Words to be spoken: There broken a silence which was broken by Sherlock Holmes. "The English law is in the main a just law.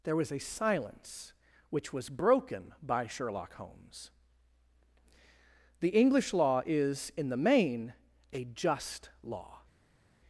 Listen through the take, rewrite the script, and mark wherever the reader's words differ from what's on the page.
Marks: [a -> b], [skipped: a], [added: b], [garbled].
There [broken -> was] a silence which was broken by Sherlock Holmes. "The English law is in the main a just law.